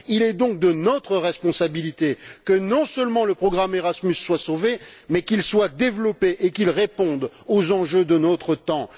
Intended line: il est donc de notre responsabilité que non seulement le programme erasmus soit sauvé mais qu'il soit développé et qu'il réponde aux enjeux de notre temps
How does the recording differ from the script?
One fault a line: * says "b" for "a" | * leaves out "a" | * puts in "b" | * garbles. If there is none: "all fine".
all fine